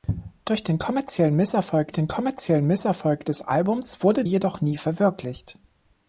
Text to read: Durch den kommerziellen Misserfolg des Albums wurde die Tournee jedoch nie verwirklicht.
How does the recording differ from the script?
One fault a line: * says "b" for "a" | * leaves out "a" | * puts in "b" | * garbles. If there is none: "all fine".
* puts in "den kommerziellen Misserfolg"
* leaves out "die Tournee"